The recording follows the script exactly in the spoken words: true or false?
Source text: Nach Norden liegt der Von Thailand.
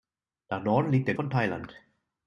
true